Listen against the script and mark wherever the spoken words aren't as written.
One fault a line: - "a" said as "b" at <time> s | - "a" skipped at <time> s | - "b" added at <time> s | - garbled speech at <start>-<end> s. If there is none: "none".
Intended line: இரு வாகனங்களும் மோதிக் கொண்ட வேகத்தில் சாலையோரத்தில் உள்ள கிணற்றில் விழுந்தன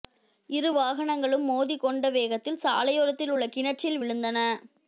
none